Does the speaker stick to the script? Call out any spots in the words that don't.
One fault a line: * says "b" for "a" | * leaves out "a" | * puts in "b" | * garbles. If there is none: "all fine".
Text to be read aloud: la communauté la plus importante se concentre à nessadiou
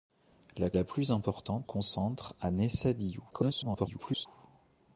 * leaves out "communauté"
* leaves out "se"
* garbles